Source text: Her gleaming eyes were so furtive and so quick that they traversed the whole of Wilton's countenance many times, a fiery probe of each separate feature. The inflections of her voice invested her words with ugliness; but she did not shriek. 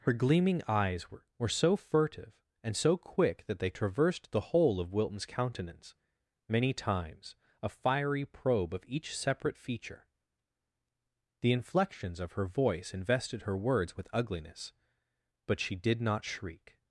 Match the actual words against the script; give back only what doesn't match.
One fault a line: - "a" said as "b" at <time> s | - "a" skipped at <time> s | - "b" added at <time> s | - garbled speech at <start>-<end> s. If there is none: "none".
- "were" added at 1.4 s